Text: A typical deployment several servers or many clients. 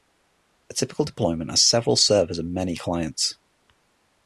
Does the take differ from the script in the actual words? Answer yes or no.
yes